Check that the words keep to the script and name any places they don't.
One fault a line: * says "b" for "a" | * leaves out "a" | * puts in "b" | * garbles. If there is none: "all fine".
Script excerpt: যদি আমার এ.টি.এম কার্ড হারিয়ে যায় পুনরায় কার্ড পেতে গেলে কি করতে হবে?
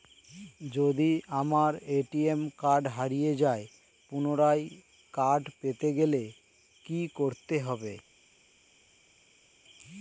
all fine